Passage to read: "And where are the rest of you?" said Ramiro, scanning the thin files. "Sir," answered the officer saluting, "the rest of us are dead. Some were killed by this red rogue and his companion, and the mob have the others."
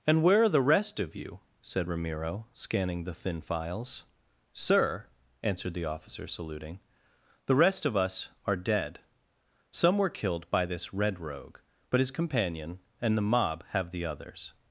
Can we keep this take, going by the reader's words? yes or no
no